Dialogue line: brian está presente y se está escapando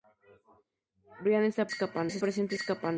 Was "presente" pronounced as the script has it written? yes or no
no